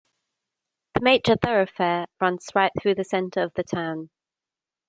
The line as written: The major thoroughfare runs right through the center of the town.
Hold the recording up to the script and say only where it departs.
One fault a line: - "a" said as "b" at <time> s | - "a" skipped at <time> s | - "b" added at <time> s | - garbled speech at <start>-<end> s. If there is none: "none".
none